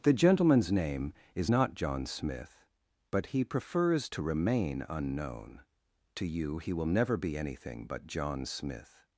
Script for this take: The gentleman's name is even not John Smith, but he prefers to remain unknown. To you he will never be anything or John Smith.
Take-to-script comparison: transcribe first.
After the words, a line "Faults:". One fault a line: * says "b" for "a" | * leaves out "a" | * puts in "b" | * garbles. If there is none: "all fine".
The gentleman's name is not John Smith, but he prefers to remain unknown. To you he will never be anything but John Smith.
Faults:
* leaves out "even"
* says "but" for "or"